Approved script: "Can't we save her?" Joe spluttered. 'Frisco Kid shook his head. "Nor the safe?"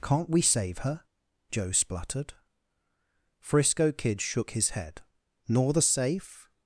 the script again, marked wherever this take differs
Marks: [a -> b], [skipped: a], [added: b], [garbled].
"Can't we save her?" Joe spluttered. 'Frisco Kid shook his head. "Nor the safe?"